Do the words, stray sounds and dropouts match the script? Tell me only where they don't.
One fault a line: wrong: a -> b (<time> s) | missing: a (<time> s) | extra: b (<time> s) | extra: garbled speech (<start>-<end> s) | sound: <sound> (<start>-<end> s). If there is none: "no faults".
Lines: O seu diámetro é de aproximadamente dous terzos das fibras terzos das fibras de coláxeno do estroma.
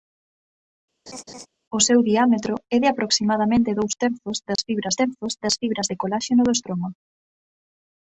sound: laugh (1.1-1.5 s)
sound: dropout (4.6-4.6 s)